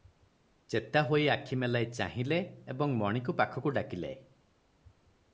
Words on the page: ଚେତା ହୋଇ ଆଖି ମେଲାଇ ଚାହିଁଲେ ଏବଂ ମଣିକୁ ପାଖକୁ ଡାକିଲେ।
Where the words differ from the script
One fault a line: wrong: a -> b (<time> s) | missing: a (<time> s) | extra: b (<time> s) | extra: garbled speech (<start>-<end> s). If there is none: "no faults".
no faults